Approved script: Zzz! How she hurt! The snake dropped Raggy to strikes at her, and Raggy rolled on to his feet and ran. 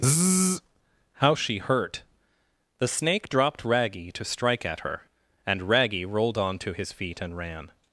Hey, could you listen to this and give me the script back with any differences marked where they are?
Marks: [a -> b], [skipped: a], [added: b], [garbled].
Zzz! How she hurt! The snake dropped Raggy to [strikes -> strike] at her, and Raggy rolled on to his feet and ran.